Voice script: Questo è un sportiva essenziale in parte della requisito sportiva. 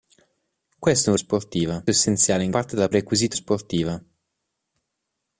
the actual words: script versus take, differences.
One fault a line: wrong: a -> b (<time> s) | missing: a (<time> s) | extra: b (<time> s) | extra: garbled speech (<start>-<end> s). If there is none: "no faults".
no faults